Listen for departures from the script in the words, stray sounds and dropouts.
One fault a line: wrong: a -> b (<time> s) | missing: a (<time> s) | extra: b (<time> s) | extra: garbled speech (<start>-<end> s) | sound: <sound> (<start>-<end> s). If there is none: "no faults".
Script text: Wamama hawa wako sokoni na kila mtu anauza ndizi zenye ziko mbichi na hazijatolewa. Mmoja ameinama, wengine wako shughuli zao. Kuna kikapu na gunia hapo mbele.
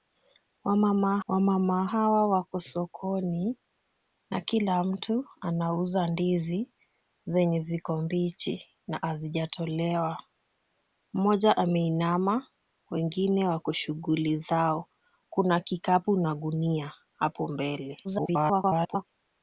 extra: wamama (1.3 s)
extra: garbled speech (18.0-19.1 s)